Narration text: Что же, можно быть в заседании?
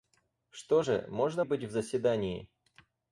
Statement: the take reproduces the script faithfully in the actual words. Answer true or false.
true